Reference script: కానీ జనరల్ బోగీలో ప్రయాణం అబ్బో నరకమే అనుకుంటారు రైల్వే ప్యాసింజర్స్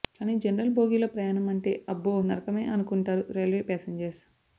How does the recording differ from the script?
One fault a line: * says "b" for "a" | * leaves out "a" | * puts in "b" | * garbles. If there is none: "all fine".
* puts in "అంటే"